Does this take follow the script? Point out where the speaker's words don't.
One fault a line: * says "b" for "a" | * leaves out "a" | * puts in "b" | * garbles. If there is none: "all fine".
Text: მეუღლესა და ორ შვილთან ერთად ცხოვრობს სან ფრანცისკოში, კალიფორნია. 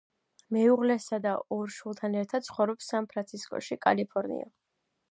all fine